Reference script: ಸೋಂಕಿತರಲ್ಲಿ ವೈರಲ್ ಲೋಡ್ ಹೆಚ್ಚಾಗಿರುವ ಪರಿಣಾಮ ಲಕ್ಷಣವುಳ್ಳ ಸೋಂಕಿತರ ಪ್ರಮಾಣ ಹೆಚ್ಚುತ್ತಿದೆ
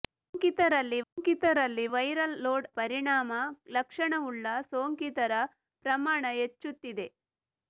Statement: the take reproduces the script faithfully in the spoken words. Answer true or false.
false